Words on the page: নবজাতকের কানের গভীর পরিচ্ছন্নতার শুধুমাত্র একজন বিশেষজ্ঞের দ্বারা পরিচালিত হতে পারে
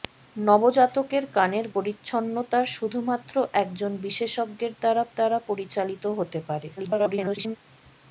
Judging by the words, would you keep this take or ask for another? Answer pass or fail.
fail